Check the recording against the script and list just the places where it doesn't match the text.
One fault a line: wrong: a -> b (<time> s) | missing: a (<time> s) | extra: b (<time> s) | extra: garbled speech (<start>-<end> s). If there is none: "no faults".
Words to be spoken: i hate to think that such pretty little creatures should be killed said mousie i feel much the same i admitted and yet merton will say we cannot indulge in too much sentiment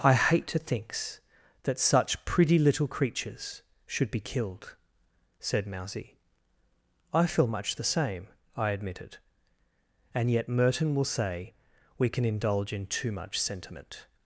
wrong: think -> thinks (0.6 s)
wrong: cannot -> can (12.1 s)